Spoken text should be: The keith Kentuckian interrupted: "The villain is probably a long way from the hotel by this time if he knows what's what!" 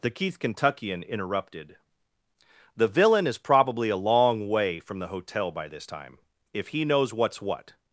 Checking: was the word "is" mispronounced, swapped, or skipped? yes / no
no